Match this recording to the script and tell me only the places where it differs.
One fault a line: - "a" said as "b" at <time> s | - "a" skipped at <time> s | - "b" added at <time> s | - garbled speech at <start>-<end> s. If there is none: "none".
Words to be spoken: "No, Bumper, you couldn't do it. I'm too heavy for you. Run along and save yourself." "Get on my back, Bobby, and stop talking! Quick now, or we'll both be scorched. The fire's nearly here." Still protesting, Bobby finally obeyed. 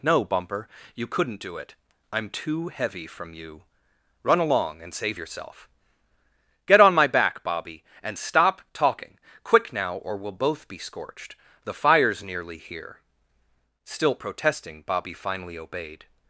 - "for" said as "from" at 3.1 s